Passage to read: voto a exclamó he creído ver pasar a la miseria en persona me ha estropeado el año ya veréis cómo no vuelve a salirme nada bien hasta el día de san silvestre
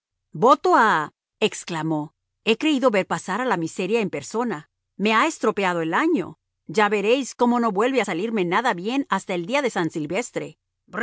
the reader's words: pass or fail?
pass